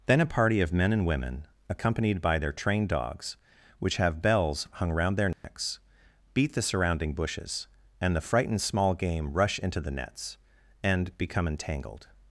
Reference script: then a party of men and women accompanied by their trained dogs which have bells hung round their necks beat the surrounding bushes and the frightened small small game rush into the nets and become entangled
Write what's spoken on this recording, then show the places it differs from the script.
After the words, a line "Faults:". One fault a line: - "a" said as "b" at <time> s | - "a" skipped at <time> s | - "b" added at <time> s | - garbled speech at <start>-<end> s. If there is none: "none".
then a party of men and women accompanied by their trained dogs which have bells hung round their necks beat the surrounding bushes and the frightened small game rush into the nets and become entangled
Faults:
- "small" skipped at 8.9 s